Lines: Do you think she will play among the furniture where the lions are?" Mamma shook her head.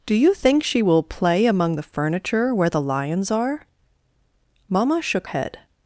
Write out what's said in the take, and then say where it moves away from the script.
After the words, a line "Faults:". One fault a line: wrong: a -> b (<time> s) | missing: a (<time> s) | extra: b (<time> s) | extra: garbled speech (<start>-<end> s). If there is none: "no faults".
Do you think she will play among the furniture where the lions are?" Mamma shook head.
Faults:
missing: her (5.3 s)